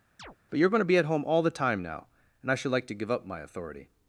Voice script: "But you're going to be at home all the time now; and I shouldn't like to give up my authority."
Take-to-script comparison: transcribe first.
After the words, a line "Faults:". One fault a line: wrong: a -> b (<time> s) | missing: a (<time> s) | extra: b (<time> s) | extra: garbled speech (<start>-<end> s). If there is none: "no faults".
"But you're going to be at home all the time now; and I should like to give up my authority."
Faults:
wrong: shouldn't -> should (2.6 s)